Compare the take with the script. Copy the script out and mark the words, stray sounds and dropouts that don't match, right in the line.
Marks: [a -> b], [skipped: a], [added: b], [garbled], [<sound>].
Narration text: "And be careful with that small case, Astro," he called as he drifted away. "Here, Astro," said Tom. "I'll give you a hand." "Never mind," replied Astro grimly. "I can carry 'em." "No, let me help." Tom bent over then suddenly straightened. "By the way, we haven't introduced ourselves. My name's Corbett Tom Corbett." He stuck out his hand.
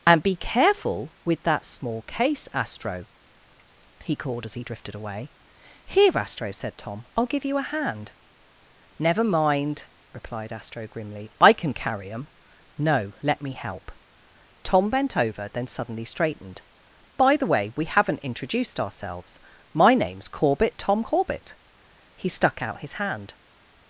"And be careful with that small case, Astro," he called as he drifted away. "Here, Astro," said Tom. "I'll give you a hand." "Never mind," replied Astro grimly. "I can carry 'em." "No, let me help." Tom bent over then suddenly straightened. "By the way, we haven't introduced ourselves. My name's Corbett Tom Corbett." He stuck out his hand.